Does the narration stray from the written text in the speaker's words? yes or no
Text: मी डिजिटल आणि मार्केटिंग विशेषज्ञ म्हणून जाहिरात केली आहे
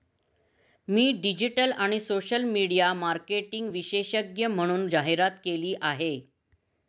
yes